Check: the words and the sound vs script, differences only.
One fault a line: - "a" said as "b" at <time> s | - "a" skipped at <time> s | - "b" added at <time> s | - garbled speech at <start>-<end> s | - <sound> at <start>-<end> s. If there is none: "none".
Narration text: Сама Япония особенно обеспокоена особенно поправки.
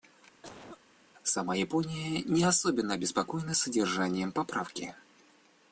- cough at 0.4-0.8 s
- "не" added at 2.2 s
- "особенно" said as "содержанием" at 3.5 s